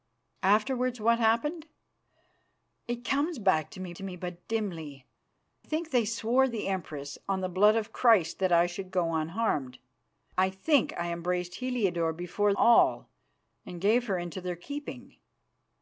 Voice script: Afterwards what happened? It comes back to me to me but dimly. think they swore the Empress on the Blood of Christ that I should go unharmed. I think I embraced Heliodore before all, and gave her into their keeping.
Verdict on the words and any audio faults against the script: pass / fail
pass